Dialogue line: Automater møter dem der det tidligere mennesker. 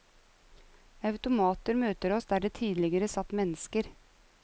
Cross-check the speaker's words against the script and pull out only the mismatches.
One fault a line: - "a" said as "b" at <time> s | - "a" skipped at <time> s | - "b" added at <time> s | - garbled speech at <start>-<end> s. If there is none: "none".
- "dem" said as "oss" at 2.1 s
- "satt" added at 3.1 s